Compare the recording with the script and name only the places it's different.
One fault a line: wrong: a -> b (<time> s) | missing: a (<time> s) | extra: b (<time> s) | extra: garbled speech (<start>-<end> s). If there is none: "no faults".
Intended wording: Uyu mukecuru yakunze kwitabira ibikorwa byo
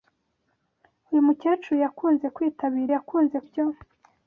wrong: ibikorwa -> yakunze (3.0 s)